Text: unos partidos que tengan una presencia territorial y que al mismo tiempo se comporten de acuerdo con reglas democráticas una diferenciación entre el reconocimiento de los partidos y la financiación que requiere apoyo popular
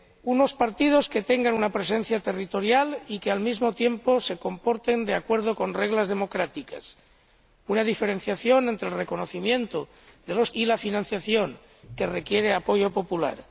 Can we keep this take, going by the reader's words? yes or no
no